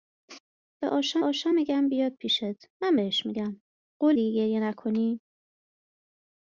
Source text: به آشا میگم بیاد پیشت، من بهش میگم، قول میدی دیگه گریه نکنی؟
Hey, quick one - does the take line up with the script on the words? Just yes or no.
no